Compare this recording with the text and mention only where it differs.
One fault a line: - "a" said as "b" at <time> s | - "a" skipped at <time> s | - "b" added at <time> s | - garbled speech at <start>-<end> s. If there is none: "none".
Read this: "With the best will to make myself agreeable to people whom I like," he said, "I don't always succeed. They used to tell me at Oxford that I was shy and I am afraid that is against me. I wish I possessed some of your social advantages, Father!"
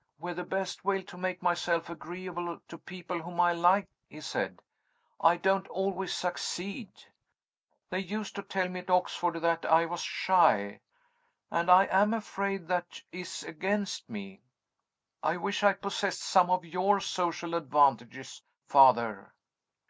none